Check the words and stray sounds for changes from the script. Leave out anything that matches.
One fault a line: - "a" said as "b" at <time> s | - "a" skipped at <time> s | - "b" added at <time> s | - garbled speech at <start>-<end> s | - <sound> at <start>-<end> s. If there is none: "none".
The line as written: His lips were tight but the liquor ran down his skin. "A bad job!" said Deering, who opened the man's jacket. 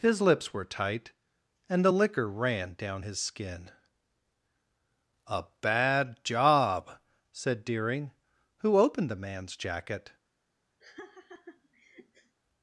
- "but" said as "and" at 1.7 s
- laugh at 10.8-12.3 s